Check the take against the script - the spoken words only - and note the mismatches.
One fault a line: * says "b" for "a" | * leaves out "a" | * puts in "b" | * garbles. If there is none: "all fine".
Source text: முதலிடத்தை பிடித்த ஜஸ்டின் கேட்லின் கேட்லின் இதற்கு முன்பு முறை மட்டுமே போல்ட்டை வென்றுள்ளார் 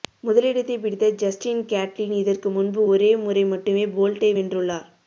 * leaves out "கேட்லின்"
* puts in "ஒரே"